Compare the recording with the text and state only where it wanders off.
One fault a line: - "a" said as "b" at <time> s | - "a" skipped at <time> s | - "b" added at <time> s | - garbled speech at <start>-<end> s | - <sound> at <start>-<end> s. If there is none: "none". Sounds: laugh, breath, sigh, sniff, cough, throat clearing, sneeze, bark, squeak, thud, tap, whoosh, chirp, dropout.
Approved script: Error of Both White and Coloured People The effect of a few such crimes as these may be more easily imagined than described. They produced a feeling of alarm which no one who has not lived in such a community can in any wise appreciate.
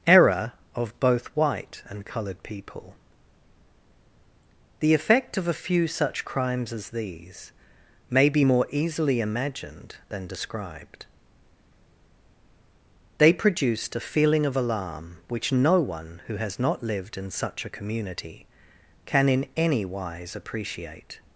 none